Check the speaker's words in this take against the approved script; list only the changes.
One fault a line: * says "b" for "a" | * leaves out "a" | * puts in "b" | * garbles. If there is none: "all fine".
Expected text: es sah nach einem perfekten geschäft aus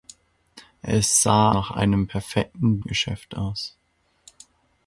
all fine